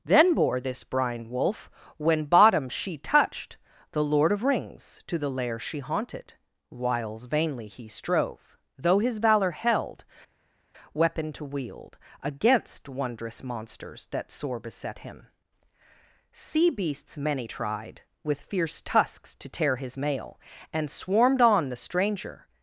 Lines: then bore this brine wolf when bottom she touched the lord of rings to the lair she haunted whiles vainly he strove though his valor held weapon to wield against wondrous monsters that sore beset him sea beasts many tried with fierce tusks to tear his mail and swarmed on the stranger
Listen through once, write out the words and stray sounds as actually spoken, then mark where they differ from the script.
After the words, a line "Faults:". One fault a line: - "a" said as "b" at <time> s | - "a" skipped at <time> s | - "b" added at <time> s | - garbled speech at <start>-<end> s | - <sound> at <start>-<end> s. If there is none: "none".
then bore this brine wolf when bottom she touched the lord of rings to the lair she haunted whiles vainly he strove though his valor held weapon to wield against wondrous monsters that sore beset him sea beasts many tried with fierce tusks to tear his mail and swarmed on the stranger
Faults:
none